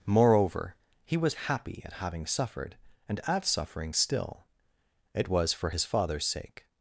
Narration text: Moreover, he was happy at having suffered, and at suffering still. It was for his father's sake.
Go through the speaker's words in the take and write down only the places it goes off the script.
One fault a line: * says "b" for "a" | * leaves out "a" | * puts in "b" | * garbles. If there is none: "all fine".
all fine